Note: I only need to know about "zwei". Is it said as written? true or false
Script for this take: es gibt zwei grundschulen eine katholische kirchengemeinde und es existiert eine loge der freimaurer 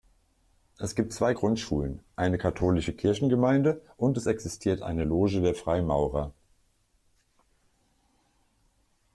true